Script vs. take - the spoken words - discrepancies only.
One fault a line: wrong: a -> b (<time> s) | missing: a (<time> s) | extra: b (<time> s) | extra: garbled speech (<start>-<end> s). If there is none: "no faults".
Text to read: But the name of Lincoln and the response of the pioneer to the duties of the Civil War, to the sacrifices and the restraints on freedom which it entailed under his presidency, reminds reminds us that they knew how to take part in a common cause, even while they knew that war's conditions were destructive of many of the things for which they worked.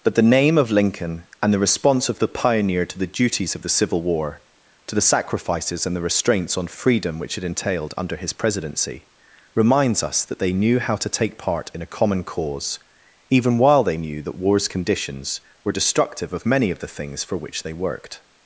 missing: reminds (10.0 s)